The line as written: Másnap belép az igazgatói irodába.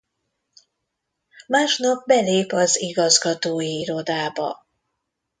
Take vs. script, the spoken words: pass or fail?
pass